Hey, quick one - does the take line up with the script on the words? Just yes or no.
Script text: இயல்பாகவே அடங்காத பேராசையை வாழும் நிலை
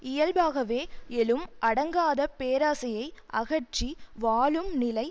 no